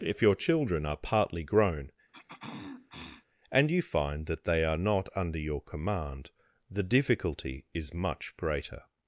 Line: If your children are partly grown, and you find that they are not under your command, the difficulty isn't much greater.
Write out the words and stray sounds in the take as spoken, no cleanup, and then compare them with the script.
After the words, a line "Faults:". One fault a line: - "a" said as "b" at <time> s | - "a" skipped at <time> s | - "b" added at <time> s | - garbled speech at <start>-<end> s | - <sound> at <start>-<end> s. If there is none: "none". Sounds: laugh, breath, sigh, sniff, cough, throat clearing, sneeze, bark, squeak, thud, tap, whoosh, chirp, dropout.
If your children are partly grown, and you find that they are not under your command, the difficulty is much greater.
Faults:
- throat clearing at 2.1-3.2 s
- "isn't" said as "is" at 7.7 s